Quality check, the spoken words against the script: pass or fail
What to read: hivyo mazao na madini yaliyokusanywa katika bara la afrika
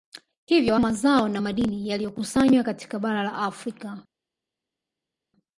pass